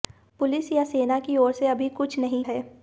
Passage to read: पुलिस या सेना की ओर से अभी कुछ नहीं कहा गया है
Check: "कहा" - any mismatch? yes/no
yes